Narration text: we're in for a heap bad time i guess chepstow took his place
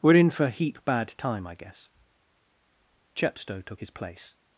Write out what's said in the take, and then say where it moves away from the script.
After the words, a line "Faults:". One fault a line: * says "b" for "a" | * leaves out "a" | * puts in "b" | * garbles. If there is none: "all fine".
we're in for heap bad time i guess chepstow took his place
Faults:
* leaves out "a"